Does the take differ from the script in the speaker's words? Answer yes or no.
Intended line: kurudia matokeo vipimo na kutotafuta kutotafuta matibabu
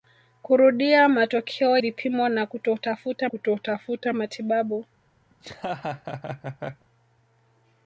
no